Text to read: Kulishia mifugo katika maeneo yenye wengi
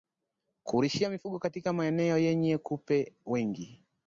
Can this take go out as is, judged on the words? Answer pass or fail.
fail